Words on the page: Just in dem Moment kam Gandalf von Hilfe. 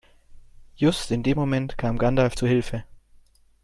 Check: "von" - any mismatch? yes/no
yes